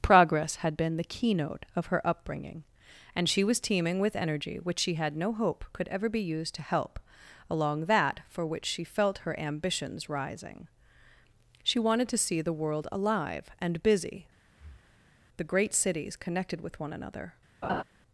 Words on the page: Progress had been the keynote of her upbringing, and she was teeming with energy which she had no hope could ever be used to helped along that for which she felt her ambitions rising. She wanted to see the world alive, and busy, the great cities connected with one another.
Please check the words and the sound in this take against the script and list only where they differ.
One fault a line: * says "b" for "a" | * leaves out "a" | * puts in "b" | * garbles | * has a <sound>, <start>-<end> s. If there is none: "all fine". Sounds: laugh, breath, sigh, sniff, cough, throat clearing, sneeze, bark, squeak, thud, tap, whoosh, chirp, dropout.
* says "help" for "helped"
* has a breath, 14.5-15.2 s
* has a laugh, 17.6-17.8 s